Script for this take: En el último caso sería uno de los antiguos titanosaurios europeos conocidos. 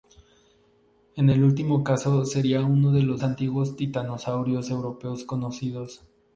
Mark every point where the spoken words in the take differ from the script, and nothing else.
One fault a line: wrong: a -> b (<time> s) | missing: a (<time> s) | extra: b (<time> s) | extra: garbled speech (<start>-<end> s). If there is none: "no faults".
no faults